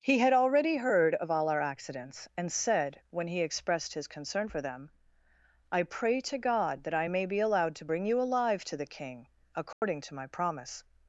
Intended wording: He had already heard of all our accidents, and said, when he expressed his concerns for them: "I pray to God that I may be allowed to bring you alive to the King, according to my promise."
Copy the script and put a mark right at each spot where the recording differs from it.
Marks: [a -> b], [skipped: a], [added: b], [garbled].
He had already heard of all our accidents, and said, when he expressed his [concerns -> concern] for them: "I pray to God that I may be allowed to bring you alive to the King, according to my promise."